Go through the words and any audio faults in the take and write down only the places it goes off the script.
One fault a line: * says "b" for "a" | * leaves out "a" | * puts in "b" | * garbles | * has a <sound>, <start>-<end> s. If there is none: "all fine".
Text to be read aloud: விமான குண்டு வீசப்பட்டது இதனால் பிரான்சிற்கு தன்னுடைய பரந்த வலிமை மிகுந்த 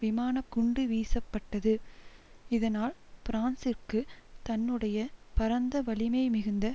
all fine